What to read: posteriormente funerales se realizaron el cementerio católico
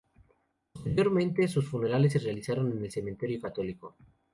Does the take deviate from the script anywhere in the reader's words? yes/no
yes